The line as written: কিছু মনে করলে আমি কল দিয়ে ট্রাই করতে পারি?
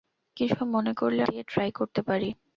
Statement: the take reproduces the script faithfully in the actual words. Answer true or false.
false